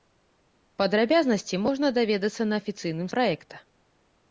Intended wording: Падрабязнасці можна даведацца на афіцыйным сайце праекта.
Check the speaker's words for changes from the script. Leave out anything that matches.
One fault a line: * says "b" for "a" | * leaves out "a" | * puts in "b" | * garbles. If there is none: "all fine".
* leaves out "сайце"